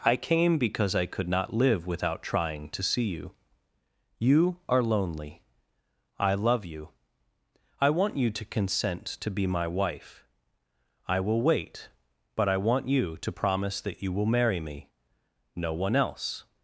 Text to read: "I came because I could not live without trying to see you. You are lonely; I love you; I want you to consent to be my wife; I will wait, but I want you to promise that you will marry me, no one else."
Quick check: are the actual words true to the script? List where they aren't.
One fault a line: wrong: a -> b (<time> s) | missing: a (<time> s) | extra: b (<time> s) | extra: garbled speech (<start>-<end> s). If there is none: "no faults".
no faults